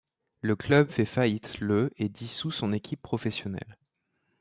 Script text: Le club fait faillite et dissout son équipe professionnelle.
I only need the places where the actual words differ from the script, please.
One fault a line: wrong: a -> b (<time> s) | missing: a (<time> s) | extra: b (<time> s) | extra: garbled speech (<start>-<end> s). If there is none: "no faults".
extra: le (1.6 s)